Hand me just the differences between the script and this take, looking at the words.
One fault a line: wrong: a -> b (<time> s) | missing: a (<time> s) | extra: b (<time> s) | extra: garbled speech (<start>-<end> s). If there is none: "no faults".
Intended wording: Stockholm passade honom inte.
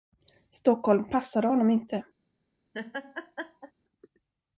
no faults